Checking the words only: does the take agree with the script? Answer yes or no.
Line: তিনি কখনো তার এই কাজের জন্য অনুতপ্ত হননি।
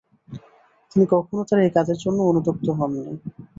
yes